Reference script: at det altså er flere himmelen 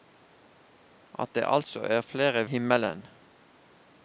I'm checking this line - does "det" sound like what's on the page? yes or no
yes